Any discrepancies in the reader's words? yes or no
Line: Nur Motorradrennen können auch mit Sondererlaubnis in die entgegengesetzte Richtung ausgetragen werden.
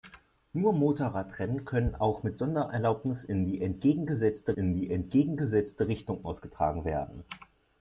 yes